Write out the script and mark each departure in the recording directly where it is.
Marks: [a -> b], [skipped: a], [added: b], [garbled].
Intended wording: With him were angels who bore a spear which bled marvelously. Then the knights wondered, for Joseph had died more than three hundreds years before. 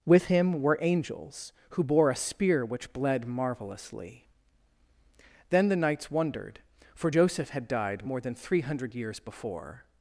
With him were angels who bore a spear which bled marvelously. Then the knights wondered, for Joseph had died more than three [hundreds -> hundred] years before.